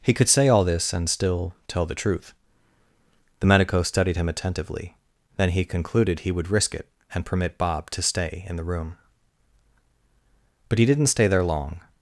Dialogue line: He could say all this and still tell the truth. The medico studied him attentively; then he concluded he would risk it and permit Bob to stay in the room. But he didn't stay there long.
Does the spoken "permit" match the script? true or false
true